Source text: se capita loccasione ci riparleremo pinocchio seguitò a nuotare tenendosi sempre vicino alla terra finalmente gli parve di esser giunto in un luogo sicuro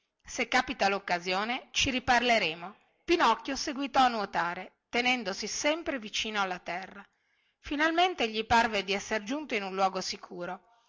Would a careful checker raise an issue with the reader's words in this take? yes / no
no